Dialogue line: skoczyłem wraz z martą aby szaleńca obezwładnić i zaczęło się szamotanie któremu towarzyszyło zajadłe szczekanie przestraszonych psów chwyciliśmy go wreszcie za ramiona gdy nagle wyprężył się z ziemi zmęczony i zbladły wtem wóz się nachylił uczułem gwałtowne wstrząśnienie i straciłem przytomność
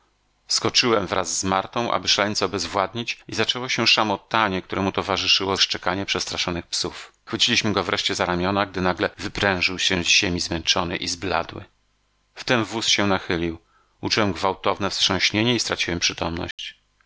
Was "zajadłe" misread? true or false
true